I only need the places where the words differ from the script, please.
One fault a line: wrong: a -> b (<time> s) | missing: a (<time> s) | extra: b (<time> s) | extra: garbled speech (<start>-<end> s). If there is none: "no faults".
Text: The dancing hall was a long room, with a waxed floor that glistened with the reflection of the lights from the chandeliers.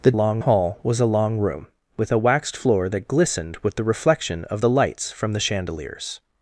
wrong: dancing -> long (0.1 s)